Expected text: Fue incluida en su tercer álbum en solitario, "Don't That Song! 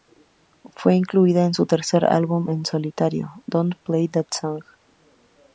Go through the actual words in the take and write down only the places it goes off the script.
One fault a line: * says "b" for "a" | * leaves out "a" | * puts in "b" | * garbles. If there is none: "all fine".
* puts in "Play"